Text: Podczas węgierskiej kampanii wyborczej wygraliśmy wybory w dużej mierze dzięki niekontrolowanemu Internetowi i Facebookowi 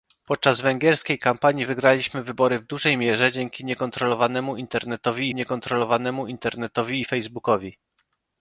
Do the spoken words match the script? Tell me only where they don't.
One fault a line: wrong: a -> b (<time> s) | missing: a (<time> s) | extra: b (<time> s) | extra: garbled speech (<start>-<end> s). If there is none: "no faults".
missing: wyborczej (1.6 s)
extra: niekontrolowanemu Internetowi (5.3 s)